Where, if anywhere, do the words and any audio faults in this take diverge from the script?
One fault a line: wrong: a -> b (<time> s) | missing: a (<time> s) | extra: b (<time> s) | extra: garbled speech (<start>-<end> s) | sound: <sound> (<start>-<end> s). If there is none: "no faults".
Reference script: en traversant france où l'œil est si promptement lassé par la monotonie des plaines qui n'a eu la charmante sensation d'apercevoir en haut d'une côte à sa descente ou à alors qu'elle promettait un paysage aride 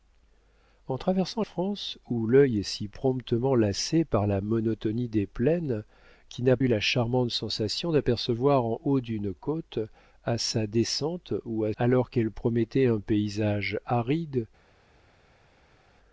no faults